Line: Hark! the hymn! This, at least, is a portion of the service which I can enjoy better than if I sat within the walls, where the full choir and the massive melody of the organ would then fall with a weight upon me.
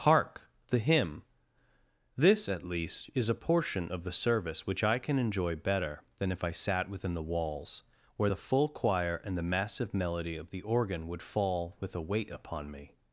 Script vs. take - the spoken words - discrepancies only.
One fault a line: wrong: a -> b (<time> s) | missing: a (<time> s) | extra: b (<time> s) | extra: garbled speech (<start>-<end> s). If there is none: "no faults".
missing: then (11.2 s)